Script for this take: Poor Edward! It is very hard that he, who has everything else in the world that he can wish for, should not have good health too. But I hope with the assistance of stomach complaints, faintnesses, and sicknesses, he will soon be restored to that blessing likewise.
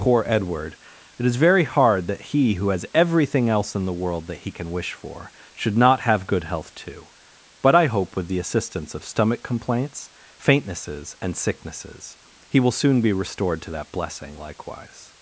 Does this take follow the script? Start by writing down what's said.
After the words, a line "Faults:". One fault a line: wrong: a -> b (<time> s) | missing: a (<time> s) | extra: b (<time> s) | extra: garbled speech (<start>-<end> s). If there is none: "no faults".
Poor Edward! It is very hard that he, who has everything else in the world that he can wish for, should not have good health too. But I hope with the assistance of stomach complaints, faintnesses, and sicknesses, he will soon be restored to that blessing likewise.
Faults:
no faults